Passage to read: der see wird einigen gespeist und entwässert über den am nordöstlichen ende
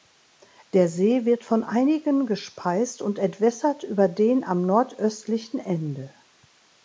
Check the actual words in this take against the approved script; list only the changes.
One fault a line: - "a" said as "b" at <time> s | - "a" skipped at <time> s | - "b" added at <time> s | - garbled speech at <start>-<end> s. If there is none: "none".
- "von" added at 1.4 s